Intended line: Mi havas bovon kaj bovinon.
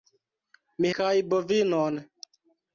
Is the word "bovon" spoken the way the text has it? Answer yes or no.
no